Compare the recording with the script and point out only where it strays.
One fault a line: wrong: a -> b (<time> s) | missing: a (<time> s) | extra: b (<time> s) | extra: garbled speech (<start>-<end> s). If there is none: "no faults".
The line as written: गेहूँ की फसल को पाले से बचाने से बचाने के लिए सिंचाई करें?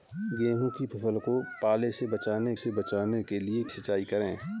no faults